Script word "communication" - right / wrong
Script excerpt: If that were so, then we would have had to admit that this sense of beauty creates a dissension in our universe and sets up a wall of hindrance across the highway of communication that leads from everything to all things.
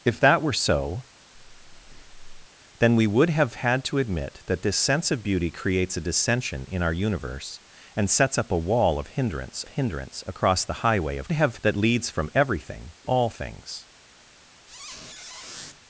wrong